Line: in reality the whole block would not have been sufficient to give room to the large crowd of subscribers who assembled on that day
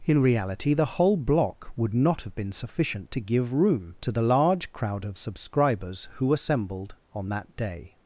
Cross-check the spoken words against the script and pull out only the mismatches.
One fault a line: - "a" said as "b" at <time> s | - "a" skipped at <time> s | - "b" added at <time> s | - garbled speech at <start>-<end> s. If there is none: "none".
none